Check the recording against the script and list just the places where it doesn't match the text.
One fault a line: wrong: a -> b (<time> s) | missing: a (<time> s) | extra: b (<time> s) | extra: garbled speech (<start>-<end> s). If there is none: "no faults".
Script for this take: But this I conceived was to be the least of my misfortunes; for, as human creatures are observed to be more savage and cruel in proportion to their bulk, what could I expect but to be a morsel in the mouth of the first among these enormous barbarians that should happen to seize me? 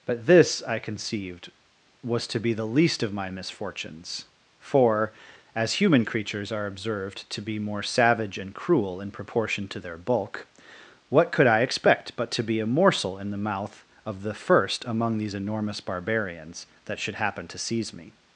no faults